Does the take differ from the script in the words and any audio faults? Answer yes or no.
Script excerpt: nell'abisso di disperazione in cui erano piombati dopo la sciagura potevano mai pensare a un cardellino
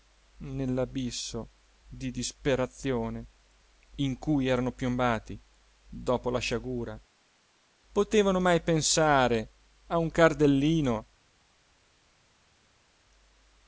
no